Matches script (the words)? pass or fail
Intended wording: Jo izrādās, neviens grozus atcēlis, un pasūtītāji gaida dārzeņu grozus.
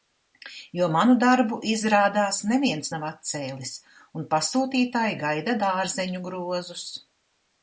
fail